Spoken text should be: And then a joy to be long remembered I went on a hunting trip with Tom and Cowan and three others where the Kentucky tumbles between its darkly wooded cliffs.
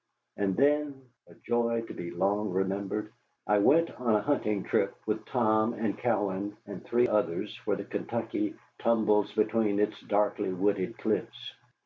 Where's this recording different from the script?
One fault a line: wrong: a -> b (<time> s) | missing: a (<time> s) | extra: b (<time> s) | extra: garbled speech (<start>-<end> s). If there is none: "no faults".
no faults